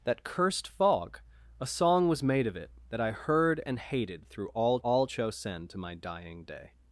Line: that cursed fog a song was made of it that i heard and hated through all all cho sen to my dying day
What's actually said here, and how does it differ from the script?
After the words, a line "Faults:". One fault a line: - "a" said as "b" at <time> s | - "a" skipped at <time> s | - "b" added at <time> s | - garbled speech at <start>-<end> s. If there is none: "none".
that cursed fog a song was made of it that i heard and hated through all all cho sen to my dying day
Faults:
none